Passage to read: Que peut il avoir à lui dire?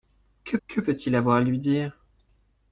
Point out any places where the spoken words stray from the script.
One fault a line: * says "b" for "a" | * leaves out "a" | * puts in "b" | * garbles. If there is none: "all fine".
* puts in "que"